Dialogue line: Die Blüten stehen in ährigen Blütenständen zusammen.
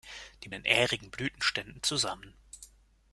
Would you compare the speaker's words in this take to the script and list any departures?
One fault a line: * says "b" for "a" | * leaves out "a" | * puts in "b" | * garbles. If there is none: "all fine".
* leaves out "Blüten stehen"